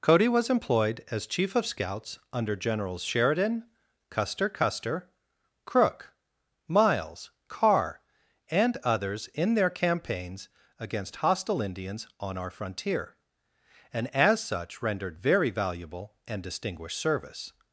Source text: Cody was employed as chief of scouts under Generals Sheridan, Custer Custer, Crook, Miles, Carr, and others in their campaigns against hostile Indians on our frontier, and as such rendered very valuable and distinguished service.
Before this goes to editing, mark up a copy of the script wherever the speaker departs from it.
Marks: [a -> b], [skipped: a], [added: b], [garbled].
Cody was employed as chief of scouts under Generals Sheridan, Custer Custer, Crook, Miles, Carr, and others in their campaigns against hostile Indians on our frontier, and as such rendered very valuable and distinguished service.